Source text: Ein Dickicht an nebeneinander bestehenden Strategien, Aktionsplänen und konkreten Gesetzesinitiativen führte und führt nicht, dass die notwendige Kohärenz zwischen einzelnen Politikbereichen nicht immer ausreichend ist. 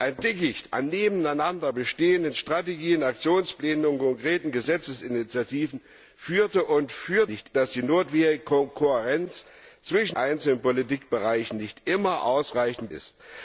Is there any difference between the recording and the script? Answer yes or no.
no